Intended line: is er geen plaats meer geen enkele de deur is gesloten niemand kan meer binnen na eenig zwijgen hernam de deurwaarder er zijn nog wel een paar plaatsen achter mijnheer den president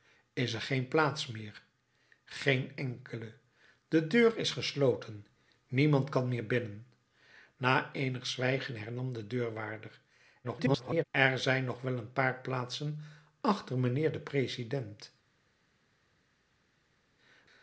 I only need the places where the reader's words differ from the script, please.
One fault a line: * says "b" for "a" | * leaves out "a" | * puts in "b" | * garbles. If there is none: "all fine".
* garbles